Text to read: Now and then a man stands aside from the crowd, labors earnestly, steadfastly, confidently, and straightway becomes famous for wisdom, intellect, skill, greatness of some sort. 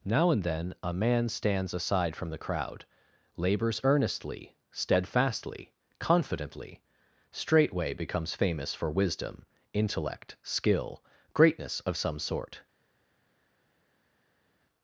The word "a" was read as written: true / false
true